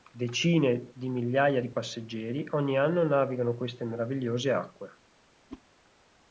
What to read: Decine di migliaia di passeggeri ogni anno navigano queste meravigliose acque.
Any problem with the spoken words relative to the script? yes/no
no